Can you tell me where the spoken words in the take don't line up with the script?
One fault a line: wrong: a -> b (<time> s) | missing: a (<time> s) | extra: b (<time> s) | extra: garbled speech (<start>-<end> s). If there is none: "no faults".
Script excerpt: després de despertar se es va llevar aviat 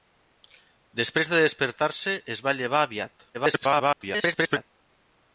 extra: garbled speech (3.3-4.7 s)